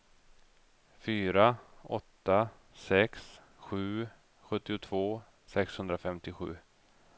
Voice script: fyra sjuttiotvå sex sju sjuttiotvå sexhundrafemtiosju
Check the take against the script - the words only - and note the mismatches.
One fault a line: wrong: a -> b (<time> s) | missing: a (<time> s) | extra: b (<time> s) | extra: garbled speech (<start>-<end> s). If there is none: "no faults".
wrong: sjuttiotvå -> åtta (2.0 s)